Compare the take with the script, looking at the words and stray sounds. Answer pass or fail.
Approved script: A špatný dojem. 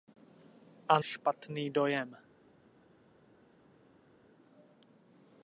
pass